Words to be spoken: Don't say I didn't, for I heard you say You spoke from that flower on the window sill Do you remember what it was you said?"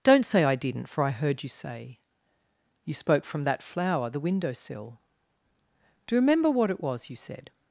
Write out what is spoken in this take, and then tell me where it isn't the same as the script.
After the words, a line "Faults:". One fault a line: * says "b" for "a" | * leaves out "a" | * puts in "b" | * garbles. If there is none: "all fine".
Don't say I didn't, for I heard you say You spoke from that flower the window sill Do you remember what it was you said?"
Faults:
* leaves out "on"